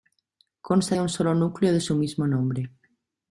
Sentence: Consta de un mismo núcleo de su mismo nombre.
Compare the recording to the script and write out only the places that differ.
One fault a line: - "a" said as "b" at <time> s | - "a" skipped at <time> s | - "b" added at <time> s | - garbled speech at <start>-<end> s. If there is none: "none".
- "mismo" said as "solo" at 1.1 s